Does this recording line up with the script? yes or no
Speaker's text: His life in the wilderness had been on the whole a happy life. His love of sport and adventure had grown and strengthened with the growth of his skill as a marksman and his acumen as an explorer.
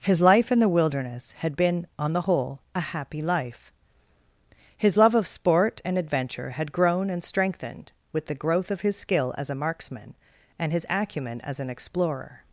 yes